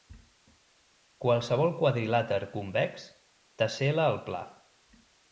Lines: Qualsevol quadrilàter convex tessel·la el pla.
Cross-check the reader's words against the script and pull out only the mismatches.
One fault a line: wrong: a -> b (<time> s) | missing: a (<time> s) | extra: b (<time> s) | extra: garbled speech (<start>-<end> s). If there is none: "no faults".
no faults